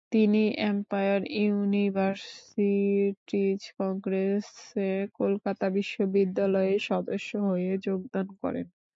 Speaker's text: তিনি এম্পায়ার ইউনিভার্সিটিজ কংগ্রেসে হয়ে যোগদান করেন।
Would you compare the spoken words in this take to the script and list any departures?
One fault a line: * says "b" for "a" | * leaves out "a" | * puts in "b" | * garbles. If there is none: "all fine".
* puts in "কলকাতা বিশ্ববিদ্যালয়ের সদস্য"